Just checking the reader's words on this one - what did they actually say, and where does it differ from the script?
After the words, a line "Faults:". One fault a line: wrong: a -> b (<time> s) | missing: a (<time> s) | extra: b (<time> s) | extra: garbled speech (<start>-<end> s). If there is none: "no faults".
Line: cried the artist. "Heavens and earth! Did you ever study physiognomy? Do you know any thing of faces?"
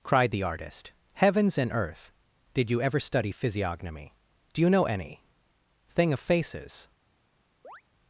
cried the artist. "Heavens and earth! Did you ever study physiognomy? Do you know any thing of faces?"
Faults:
no faults